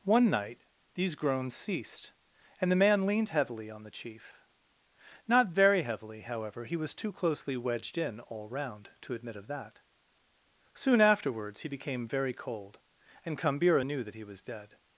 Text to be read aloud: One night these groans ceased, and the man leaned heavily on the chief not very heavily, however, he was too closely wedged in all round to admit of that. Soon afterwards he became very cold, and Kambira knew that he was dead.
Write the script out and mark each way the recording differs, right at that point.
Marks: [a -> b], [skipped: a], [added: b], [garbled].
One night these groans ceased, and the man leaned heavily on the chief not very heavily, however, he was too closely wedged in all round to admit of that. Soon afterwards he became very cold, and Kambira knew that he was dead.